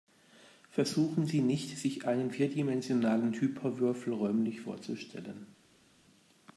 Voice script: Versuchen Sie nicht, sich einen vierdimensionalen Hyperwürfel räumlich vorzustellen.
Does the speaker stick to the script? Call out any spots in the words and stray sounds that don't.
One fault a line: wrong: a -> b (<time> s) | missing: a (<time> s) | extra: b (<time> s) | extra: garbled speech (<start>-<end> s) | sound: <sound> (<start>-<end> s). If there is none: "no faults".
no faults